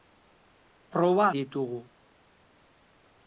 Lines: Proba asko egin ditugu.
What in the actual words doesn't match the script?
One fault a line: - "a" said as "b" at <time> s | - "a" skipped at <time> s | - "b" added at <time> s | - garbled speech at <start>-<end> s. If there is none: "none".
- "asko egin" skipped at 1.3 s